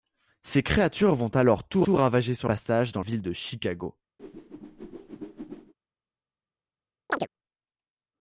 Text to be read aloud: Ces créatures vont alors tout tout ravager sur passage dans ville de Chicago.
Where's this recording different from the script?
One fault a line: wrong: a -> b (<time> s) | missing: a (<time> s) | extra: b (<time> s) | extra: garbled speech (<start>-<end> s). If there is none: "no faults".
no faults